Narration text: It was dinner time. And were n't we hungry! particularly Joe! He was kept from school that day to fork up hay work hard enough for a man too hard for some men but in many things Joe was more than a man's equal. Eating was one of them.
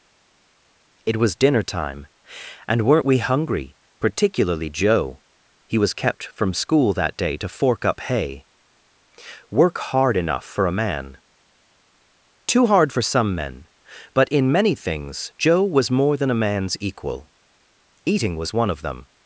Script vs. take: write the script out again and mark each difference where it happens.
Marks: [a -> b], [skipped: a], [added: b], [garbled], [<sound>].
It was dinner time. And were n't we hungry! particularly Joe! He was kept from school that day to fork up hay work hard enough for a man too hard for some men but in many things Joe was more than a man's equal. Eating was one of them.